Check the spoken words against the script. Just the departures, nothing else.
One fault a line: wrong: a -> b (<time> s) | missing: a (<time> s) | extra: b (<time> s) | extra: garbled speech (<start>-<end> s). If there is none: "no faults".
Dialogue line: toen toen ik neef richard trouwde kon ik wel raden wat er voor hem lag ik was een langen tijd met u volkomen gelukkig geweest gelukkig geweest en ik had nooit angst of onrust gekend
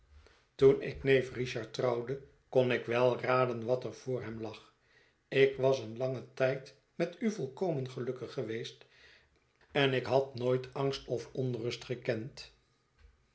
missing: toen (0.8 s)
missing: gelukkig geweest (8.9 s)